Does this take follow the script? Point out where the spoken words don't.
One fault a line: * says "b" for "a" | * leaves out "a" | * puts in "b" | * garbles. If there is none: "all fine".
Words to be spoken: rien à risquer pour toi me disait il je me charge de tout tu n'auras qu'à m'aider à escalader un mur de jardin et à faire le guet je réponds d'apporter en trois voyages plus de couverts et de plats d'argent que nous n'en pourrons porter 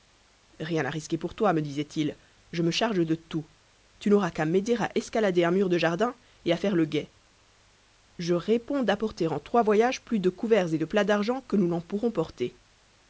all fine